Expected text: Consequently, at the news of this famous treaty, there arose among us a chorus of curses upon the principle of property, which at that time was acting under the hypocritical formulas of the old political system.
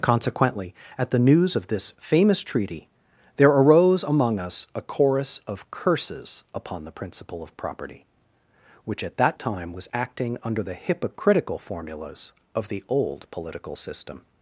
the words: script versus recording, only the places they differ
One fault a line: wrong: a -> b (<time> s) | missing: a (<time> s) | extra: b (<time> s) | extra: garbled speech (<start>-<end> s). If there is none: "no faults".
no faults